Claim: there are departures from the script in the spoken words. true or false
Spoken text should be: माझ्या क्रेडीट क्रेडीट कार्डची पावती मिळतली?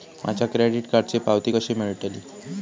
true